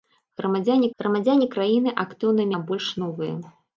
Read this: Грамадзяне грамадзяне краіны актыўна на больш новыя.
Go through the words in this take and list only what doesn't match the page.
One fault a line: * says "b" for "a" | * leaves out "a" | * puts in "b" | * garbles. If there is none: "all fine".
all fine